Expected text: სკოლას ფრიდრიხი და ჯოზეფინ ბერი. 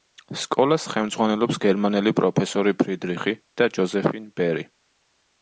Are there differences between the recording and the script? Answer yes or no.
yes